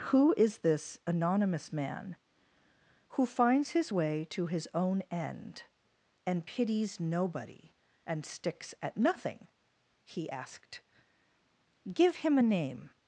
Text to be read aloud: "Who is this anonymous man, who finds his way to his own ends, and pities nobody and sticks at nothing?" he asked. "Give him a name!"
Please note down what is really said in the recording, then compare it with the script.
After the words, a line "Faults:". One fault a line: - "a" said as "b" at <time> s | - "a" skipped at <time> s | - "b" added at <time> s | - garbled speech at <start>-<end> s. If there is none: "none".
"Who is this anonymous man, who finds his way to his own end, and pities nobody and sticks at nothing?" he asked. "Give him a name!"
Faults:
- "ends" said as "end" at 5.1 s